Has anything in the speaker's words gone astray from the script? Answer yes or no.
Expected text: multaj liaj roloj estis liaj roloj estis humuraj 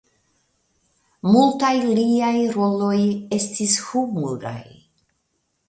yes